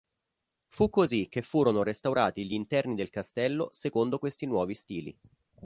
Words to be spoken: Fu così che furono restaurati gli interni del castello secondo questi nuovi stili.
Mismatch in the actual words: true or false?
false